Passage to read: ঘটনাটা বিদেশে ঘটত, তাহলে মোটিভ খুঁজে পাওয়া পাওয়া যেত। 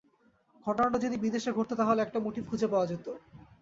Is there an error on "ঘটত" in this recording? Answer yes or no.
no